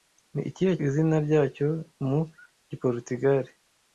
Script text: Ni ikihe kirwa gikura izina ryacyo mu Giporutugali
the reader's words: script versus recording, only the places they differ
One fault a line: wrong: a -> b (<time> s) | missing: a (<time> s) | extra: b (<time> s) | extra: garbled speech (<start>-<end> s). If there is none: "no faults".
missing: kirwa gikura (0.7 s)